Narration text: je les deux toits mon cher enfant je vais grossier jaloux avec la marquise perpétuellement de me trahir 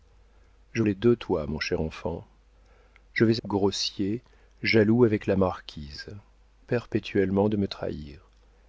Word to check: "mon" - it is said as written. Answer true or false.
true